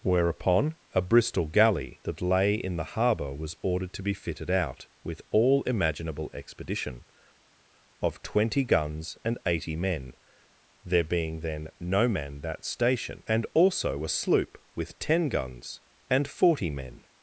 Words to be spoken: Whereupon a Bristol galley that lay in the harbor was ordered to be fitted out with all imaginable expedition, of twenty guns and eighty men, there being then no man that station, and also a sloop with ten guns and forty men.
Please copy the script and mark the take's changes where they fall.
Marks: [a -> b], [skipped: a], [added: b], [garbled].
Whereupon a Bristol galley that lay in the harbor was ordered to be fitted out with all imaginable expedition, of twenty guns and eighty men, there being then no man that station, and also a sloop with ten guns and forty men.